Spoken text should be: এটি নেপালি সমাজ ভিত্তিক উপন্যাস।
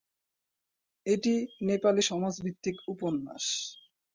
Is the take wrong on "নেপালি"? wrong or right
right